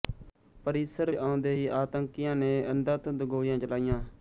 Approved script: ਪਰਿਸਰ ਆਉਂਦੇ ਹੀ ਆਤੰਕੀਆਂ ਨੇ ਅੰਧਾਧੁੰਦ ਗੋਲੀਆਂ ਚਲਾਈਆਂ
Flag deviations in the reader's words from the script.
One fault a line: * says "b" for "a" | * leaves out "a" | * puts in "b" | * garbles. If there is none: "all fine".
all fine